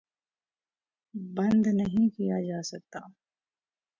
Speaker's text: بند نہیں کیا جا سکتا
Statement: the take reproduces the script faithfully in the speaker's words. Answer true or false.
true